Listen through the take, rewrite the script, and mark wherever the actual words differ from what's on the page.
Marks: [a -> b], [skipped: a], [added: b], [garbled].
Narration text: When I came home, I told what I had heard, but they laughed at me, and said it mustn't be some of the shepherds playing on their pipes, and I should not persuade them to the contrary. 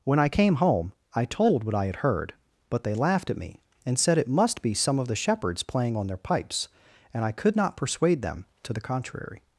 When I came home, I told what I had heard, but they laughed at me, and said it [mustn't -> must] be some of the shepherds playing on their pipes, and I [should -> could] not persuade them to the contrary.